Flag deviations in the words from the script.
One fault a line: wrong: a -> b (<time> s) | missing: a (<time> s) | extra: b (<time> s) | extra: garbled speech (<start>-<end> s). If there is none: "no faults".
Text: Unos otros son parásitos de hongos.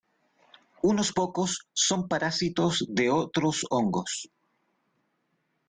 wrong: otros -> pocos (1.1 s)
extra: otros (3.1 s)